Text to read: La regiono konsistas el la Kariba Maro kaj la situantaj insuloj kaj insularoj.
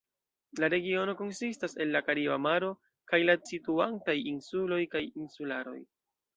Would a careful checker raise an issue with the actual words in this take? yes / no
no